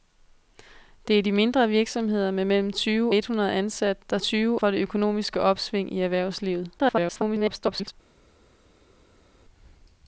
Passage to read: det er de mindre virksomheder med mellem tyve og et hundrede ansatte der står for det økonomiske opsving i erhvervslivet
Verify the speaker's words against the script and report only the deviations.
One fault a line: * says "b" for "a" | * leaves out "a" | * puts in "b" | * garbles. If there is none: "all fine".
* leaves out "og"
* says "tyve" for "står"
* garbles